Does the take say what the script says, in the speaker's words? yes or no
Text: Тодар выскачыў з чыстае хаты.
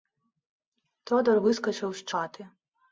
no